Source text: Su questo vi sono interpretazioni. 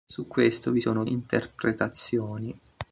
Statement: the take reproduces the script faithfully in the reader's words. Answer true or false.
true